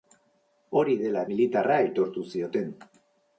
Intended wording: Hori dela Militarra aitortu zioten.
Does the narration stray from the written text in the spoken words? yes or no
no